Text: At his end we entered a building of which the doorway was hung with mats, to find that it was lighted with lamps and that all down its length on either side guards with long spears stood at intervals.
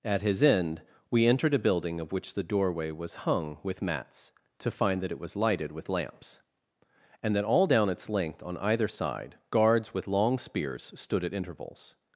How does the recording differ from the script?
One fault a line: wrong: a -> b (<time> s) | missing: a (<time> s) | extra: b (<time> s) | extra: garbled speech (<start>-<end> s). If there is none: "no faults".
no faults